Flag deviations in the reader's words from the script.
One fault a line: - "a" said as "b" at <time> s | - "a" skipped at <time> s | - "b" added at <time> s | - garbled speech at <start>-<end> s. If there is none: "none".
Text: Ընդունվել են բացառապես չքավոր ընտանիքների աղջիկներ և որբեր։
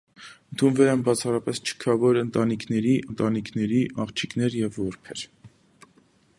- "ընտանիքների" added at 3.1 s